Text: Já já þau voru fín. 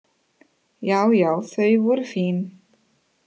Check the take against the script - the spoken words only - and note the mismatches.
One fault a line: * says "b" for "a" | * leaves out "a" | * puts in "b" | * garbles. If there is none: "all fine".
all fine